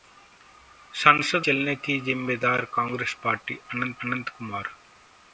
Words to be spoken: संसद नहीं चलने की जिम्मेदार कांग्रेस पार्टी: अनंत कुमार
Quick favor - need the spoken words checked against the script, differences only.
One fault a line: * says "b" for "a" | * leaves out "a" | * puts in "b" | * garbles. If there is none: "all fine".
* leaves out "नहीं"
* puts in "अनंत"